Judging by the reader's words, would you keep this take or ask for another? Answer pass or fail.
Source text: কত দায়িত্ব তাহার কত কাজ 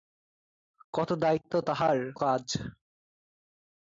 fail